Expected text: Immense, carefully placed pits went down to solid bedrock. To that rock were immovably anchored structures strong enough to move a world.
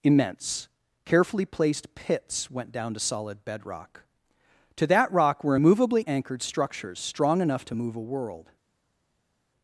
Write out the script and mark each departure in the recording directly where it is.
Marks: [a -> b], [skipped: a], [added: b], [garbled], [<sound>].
Immense, carefully placed pits went down to solid bedrock. To that rock were immovably anchored structures strong enough to move a world.